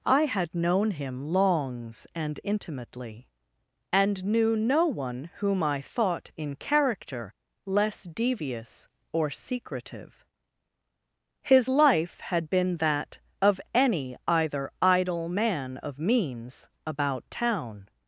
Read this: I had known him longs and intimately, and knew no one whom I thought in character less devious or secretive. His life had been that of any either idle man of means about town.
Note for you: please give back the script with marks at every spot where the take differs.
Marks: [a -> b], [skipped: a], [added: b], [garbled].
I had known him longs and intimately, and knew no one whom I thought in character less devious or secretive. His life had been that of any either idle man of means about town.